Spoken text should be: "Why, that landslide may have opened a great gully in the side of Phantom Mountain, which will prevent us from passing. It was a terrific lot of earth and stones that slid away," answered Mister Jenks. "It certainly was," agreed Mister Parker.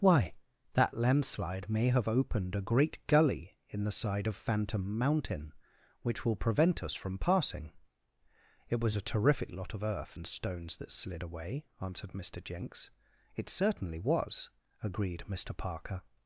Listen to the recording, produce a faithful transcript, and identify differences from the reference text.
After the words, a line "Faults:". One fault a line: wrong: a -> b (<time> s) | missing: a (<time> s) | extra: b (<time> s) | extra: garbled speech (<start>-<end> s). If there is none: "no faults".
"Why, that landslide may have opened a great gully in the side of Phantom Mountain, which will prevent us from passing. It was a terrific lot of earth and stones that slid away," answered Mister Jenks. "It certainly was," agreed Mister Parker.
Faults:
no faults